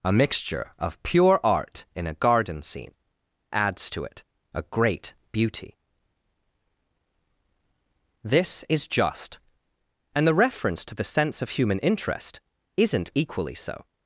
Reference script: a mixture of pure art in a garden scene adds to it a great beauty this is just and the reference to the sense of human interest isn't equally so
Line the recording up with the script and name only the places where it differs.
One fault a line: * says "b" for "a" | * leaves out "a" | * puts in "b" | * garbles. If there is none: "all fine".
all fine